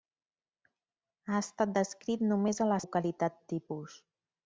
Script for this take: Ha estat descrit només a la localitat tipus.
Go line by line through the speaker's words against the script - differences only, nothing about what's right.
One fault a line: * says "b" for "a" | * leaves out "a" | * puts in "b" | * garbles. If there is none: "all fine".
all fine